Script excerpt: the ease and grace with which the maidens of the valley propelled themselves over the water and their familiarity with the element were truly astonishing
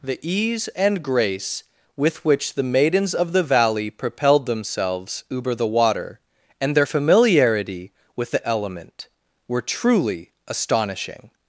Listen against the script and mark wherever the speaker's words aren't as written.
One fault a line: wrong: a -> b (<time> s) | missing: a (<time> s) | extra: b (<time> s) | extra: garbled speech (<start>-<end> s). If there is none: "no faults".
no faults